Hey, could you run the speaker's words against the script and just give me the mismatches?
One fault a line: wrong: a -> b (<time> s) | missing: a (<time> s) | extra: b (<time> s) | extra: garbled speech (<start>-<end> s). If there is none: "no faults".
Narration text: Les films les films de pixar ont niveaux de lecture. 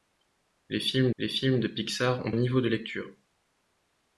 no faults